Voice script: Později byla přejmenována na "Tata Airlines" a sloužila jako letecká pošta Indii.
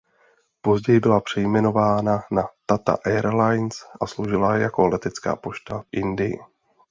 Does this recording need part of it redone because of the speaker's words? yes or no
no